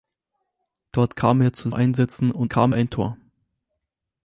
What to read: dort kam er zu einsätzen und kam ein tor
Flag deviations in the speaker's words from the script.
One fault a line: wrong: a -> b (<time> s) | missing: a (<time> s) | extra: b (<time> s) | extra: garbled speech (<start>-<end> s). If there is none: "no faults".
no faults